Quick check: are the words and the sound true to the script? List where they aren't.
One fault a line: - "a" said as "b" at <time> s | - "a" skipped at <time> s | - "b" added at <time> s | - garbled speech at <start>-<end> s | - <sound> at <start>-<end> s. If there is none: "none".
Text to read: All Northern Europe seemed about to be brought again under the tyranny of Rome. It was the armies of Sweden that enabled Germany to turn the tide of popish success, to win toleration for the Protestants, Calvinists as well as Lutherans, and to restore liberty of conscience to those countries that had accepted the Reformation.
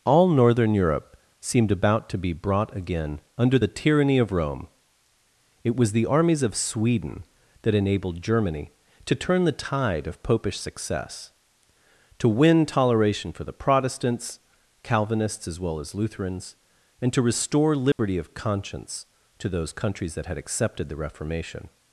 - dropout at 17.9-18.0 s